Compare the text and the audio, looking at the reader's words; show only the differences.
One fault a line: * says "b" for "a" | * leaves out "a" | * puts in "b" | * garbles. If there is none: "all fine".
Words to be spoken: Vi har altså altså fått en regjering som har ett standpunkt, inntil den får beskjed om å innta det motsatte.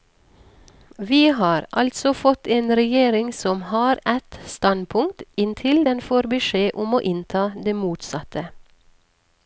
* leaves out "altså"